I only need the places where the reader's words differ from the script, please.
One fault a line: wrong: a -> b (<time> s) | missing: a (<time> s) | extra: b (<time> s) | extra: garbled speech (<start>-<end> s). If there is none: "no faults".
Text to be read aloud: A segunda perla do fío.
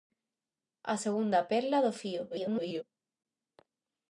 extra: garbled speech (2.3-2.8 s)